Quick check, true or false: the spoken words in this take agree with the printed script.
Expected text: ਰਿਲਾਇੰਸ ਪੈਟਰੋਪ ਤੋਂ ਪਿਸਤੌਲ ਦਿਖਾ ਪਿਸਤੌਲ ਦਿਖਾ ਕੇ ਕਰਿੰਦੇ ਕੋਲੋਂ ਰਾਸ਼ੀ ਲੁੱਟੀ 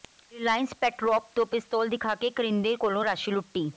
false